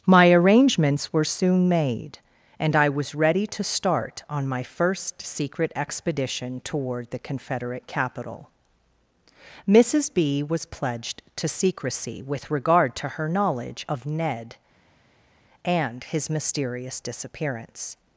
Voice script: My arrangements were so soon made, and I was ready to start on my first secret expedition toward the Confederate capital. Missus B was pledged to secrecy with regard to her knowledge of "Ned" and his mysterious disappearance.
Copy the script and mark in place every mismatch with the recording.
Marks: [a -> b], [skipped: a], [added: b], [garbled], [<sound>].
My arrangements were [skipped: so] soon made, and I was ready to start on my first secret expedition toward the Confederate capital. Missus B was pledged to secrecy with regard to her knowledge of "Ned" and his mysterious disappearance.